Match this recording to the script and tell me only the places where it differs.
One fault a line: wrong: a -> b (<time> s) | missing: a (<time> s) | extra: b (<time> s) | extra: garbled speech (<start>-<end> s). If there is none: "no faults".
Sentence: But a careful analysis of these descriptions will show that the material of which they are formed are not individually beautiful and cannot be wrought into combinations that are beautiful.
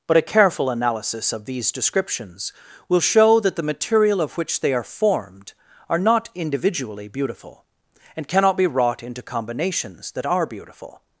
no faults